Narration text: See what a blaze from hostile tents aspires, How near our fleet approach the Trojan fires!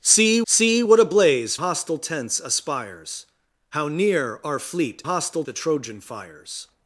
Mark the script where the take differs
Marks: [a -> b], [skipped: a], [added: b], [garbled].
See [added: see] what a blaze [skipped: from] hostile tents aspires, How near our fleet [approach -> hostile] the Trojan fires!